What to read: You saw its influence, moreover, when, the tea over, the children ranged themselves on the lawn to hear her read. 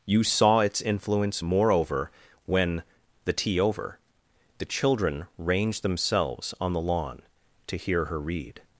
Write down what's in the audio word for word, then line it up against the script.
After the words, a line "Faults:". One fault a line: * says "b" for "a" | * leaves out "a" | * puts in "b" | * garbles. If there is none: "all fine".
You saw its influence, moreover, when, the tea over, the children ranged themselves on the lawn to hear her read.
Faults:
all fine